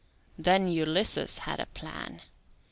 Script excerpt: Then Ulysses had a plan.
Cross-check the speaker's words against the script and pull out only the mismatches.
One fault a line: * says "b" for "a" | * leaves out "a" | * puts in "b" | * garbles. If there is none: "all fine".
all fine